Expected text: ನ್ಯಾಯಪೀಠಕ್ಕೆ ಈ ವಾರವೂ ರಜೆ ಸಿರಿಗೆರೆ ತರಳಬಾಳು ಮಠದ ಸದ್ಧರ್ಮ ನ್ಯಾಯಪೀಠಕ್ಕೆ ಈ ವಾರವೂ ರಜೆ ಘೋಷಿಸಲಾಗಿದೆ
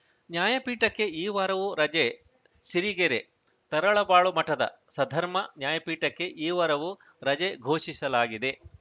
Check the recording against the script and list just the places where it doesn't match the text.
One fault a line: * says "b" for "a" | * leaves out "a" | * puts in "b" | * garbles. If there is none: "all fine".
all fine